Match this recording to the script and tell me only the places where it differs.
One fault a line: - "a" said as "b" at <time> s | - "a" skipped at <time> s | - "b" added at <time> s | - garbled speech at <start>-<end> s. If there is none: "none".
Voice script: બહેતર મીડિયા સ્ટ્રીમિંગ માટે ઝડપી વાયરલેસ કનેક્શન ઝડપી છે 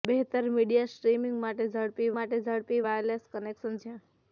- "માટે ઝડપી" added at 2.1 s
- "ઝડપી" skipped at 3.8 s